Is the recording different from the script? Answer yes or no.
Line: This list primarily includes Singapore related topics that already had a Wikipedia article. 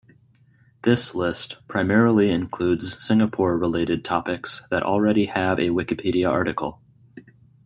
yes